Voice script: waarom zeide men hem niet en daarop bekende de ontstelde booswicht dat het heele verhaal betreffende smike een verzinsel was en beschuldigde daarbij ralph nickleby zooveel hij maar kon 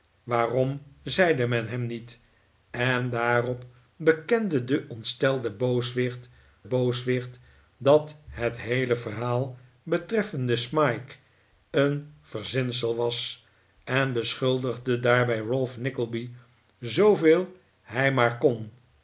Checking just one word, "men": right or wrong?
right